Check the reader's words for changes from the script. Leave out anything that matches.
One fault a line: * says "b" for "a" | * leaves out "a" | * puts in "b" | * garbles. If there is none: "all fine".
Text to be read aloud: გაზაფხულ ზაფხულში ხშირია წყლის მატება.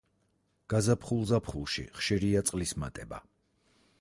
all fine